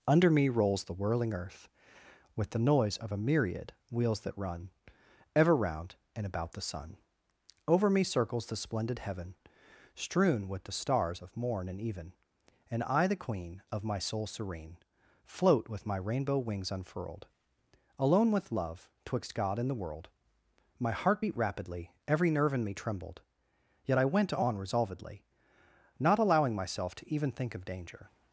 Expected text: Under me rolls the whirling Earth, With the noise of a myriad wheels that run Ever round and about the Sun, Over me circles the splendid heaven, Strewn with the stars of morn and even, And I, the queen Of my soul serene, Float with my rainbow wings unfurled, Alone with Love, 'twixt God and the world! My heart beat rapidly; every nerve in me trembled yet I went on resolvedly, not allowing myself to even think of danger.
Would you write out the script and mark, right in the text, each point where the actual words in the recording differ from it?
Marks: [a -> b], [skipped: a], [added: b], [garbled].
Under me rolls the whirling Earth, With the noise of a myriad wheels that run Ever round and about the Sun, Over me circles the splendid heaven, Strewn with the stars of morn and even, And I, the queen Of my soul serene, Float with my rainbow wings unfurled, Alone with Love, 'twixt God and the world! My heart beat rapidly; every nerve in me trembled yet I went on resolvedly, not allowing myself to even think of danger.